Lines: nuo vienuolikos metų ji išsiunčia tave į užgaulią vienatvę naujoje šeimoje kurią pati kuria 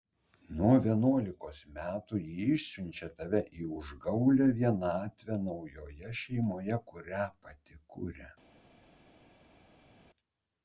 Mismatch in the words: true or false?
false